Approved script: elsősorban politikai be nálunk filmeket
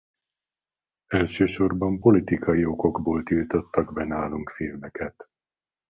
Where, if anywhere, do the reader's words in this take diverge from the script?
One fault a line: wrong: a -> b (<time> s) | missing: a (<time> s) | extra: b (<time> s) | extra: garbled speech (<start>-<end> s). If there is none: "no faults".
extra: okokból tiltottak (2.6 s)